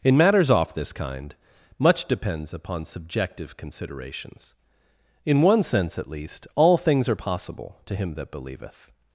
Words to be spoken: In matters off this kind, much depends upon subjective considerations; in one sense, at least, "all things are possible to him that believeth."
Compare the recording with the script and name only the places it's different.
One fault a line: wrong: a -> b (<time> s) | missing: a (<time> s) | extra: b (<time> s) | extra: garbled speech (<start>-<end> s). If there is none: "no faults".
no faults